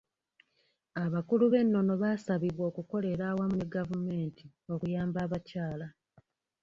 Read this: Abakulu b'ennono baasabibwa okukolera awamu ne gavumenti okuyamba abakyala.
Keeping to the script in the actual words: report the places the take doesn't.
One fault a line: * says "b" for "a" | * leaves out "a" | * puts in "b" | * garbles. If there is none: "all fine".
all fine